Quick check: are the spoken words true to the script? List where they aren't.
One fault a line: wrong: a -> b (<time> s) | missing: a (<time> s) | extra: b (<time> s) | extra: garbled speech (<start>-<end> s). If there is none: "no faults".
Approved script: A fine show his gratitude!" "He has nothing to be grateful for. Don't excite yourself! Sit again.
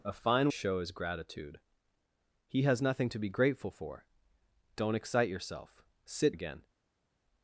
no faults